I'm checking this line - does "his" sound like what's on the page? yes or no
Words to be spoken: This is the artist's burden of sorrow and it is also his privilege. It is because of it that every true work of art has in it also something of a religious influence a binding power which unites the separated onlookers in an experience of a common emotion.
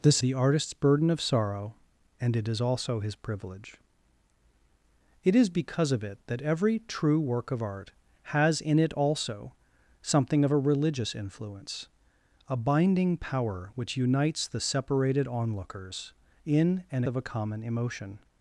yes